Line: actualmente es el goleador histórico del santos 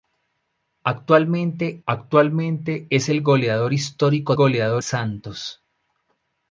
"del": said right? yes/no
no